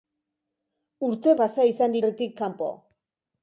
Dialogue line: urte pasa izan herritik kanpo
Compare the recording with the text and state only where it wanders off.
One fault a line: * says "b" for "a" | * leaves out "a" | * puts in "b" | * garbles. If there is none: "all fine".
all fine